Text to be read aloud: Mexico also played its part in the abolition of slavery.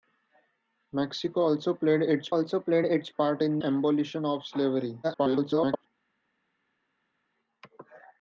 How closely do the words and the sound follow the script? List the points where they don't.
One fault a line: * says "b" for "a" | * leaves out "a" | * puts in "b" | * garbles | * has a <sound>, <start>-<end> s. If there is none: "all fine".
* puts in "also played its"
* leaves out "the"
* garbles